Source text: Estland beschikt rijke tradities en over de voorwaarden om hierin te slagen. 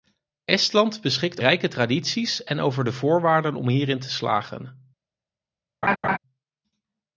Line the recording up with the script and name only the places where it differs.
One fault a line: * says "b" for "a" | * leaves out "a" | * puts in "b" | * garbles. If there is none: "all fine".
all fine